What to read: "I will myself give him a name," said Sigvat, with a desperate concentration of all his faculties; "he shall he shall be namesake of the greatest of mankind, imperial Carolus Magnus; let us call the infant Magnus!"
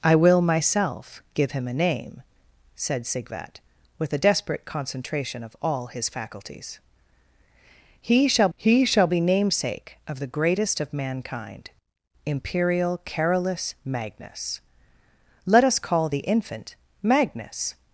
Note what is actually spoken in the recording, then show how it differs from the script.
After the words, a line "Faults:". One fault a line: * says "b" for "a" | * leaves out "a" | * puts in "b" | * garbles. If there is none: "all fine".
"I will myself give him a name," said Sigvat, with a desperate concentration of all his faculties; "he shall he shall be namesake of the greatest of mankind, imperial Carolus Magnus; let us call the infant Magnus!"
Faults:
all fine